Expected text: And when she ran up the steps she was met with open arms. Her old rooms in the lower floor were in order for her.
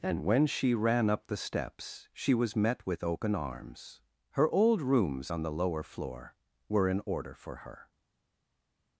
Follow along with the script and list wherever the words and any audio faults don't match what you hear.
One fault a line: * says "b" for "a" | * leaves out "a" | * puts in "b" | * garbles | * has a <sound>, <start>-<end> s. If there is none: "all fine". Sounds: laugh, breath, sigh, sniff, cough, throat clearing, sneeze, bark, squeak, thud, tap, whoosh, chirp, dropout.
* says "on" for "in"